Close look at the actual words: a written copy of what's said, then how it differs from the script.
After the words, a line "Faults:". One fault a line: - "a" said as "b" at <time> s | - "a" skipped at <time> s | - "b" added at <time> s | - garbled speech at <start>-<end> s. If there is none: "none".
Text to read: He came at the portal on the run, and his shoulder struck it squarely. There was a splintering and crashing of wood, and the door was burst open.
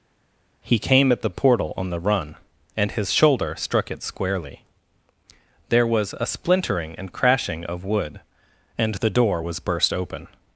He came at the portal on the run, and his shoulder struck it squarely. There was a splintering and crashing of wood, and the door was burst open.
Faults:
none